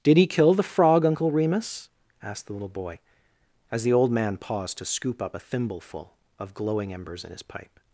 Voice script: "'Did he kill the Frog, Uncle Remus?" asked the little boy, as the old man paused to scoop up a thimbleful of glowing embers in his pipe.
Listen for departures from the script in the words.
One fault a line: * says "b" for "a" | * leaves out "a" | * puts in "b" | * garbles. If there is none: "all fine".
all fine